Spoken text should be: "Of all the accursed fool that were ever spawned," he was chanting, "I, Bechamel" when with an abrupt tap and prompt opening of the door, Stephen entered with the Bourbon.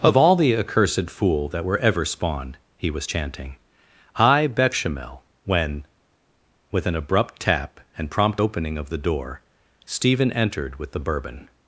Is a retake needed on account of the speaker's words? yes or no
no